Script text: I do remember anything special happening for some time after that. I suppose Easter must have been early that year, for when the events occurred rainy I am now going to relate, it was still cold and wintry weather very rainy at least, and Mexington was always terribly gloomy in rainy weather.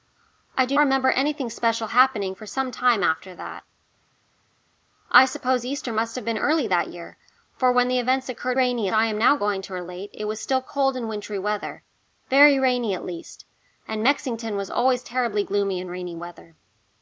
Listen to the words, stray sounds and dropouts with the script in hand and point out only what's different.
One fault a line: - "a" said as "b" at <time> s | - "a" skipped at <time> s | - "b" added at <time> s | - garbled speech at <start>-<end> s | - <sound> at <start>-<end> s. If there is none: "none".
none